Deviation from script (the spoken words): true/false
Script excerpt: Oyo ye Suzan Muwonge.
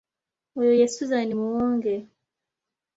false